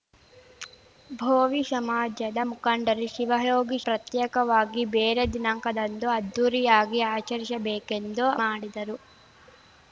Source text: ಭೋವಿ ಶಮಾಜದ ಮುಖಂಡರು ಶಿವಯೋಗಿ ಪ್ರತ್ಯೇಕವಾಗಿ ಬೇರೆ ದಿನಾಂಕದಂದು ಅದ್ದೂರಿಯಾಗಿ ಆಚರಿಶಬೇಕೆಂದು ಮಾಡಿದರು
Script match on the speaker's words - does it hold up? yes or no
yes